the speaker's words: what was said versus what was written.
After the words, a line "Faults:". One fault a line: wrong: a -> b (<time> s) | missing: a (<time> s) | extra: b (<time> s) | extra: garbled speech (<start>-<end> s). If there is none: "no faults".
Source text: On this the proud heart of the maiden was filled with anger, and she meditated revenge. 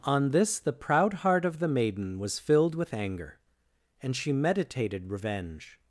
On this the proud heart of the maiden was filled with anger, and she meditated revenge.
Faults:
no faults